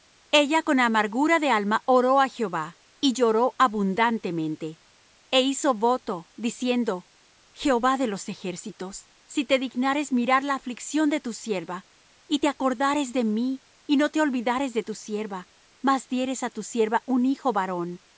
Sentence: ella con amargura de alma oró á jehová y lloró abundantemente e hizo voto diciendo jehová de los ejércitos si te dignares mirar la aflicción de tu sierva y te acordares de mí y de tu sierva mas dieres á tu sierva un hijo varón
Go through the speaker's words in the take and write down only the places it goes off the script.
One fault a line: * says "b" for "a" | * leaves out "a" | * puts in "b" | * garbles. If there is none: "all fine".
* puts in "no te olvidares"